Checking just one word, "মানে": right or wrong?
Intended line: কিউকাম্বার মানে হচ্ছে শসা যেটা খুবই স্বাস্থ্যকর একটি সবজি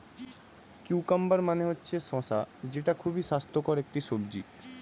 right